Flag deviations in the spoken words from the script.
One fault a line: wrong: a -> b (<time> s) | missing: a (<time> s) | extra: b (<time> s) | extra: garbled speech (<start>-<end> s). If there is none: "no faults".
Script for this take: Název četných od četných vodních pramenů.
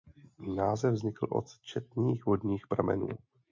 wrong: četných -> vznikl (0.9 s)